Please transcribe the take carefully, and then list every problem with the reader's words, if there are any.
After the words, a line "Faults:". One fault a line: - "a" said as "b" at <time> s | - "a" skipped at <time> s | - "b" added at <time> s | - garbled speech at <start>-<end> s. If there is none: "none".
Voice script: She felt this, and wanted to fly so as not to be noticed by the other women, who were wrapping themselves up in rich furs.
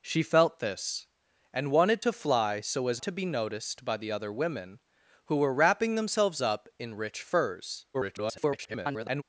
She felt this, and wanted to fly so as to be noticed by the other women, who were wrapping themselves up in rich furs. [garbled]
Faults:
- "not" skipped at 3.0 s
- garbled speech at 7.9-9.2 s